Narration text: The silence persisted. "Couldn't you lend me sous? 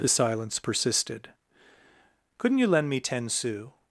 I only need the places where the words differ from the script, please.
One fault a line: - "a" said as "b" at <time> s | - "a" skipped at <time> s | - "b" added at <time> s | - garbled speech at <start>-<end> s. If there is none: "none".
- "ten" added at 3.0 s